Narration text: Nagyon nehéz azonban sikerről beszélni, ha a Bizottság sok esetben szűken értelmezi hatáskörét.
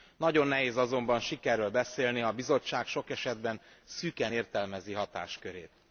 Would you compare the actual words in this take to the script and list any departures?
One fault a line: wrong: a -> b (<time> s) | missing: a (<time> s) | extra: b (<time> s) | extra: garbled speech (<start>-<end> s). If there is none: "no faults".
no faults